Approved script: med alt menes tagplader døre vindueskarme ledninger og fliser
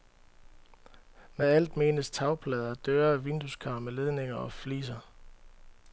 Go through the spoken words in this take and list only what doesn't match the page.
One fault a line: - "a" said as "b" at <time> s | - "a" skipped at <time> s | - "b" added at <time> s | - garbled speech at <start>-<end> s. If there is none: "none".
none